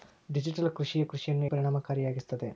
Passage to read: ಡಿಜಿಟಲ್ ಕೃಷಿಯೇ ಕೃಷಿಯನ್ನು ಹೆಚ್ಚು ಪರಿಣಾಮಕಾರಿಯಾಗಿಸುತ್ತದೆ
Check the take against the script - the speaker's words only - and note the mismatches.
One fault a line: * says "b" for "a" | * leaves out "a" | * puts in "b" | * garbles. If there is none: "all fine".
* leaves out "ಹೆಚ್ಚು"